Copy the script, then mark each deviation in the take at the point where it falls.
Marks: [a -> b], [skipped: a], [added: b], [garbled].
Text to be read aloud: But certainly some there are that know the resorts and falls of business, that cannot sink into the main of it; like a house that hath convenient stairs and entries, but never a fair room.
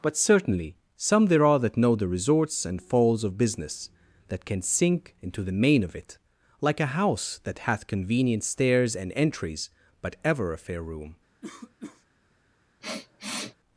But certainly some there are that know the resorts and falls of business, that [cannot -> can] sink into the main of it; like a house that hath convenient stairs and entries, but [never -> ever] a fair room.